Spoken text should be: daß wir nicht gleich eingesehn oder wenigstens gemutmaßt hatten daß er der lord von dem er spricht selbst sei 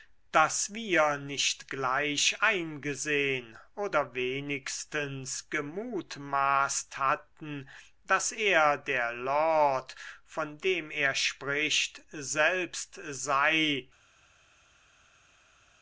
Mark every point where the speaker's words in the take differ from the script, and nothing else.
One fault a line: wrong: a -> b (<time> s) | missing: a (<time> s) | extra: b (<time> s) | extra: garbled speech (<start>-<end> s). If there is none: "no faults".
no faults